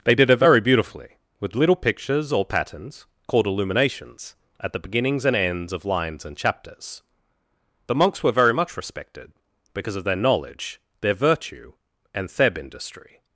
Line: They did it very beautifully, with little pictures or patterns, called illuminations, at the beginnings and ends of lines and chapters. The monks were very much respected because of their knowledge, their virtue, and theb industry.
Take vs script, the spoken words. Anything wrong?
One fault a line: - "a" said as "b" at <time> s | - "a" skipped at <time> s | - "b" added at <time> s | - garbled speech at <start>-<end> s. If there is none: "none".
none